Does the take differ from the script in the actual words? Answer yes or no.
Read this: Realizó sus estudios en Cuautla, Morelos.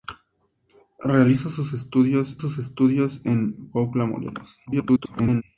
yes